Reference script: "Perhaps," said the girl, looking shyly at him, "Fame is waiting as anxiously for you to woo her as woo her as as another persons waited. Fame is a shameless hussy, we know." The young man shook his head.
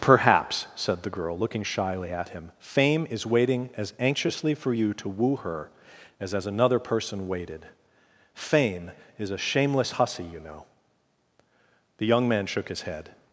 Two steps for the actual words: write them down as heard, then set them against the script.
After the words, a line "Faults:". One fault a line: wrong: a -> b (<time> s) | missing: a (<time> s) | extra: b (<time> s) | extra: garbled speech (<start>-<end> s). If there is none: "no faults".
"Perhaps," said the girl, looking shyly at him, "Fame is waiting as anxiously for you to woo her as as another person waited. Fame is a shameless hussy, you know." The young man shook his head.
Faults:
missing: woo her (6.3 s)
missing: as (6.5 s)
wrong: persons -> person (6.8 s)
wrong: we -> you (10.2 s)